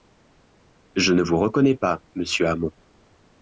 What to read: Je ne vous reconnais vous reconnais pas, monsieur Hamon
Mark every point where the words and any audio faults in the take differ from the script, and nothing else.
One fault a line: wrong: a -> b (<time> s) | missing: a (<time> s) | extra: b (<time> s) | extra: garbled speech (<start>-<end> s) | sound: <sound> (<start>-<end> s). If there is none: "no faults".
missing: vous reconnais (1.8 s)